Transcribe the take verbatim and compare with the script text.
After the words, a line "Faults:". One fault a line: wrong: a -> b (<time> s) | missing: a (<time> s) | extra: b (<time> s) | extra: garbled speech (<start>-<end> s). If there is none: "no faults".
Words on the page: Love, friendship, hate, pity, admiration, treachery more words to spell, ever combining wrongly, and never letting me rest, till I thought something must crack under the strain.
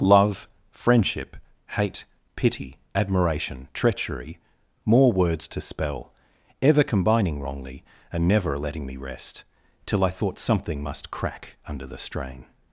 Love, friendship, hate, pity, admiration, treachery more words to spell, ever combining wrongly, and never letting me rest, till I thought something must crack under the strain.
Faults:
no faults